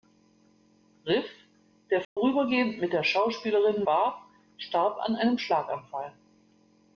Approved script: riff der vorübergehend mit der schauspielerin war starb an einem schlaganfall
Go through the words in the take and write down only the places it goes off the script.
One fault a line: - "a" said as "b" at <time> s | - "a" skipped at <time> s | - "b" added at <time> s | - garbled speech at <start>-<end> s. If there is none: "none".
none